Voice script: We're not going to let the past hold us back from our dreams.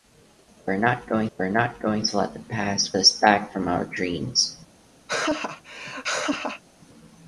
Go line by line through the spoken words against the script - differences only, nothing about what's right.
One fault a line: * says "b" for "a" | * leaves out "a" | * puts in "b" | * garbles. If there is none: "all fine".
* puts in "we're not going"
* leaves out "hold"